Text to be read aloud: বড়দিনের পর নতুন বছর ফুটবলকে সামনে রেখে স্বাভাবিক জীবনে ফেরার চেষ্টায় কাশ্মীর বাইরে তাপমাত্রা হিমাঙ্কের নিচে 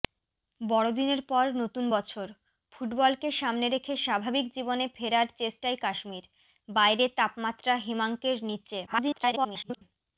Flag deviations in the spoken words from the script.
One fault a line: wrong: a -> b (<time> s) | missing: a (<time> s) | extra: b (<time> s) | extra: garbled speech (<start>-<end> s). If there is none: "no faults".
extra: garbled speech (8.9-9.8 s)